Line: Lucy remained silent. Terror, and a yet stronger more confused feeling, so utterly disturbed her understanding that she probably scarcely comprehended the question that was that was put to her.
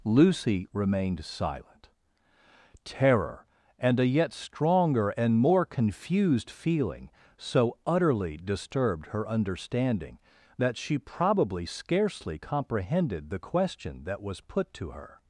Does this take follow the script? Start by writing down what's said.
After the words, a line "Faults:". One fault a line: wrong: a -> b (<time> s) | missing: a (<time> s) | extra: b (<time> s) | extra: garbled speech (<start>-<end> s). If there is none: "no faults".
Lucy remained silent. Terror, and a yet stronger and more confused feeling, so utterly disturbed her understanding that she probably scarcely comprehended the question that was put to her.
Faults:
extra: and (5.1 s)
missing: that was (14.4 s)